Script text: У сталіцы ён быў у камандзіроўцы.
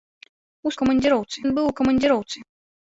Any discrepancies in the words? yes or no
yes